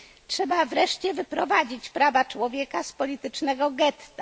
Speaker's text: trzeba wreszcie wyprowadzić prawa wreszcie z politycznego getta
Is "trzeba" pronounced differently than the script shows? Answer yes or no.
no